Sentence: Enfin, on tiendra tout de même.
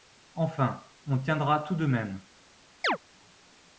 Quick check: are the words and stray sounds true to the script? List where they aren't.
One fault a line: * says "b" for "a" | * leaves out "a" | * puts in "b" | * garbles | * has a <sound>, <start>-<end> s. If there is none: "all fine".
* has a chirp, 2.8-3.0 s